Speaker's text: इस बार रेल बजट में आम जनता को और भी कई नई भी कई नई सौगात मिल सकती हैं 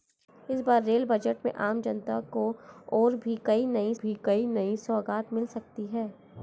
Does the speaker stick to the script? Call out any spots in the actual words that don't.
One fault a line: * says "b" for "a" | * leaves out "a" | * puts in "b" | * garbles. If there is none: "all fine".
all fine